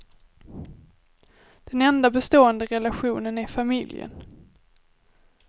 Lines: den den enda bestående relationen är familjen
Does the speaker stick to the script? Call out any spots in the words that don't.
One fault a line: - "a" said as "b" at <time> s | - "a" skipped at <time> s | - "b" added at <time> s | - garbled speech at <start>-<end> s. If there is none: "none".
- "den" skipped at 1.8 s